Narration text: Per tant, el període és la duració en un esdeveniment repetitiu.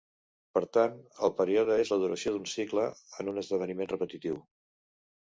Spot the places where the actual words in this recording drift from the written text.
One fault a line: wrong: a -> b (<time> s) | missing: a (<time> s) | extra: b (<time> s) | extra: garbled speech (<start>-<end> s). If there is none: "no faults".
extra: d'un cicle (2.3 s)